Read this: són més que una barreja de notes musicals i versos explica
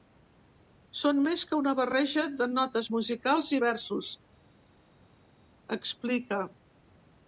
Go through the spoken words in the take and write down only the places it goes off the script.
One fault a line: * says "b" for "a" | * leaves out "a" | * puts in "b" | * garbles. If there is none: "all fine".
all fine